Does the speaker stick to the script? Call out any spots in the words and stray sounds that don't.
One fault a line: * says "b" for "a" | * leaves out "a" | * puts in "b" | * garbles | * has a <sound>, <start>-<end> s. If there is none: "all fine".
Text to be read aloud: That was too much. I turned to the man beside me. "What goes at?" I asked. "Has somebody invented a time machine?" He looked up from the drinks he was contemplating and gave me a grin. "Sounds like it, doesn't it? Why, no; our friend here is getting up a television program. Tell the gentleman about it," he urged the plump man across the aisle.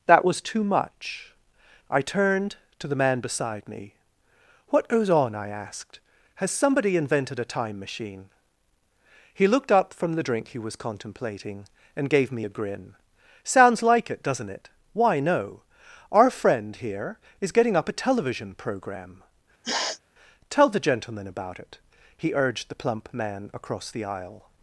* says "on" for "at"
* says "drink" for "drinks"
* has a sniff, 19.6-20.0 s